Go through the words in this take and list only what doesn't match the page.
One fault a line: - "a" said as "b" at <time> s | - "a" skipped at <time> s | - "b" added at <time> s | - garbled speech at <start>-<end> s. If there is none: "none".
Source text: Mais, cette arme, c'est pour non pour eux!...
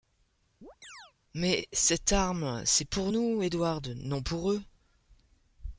- "nous Edward" added at 3.1 s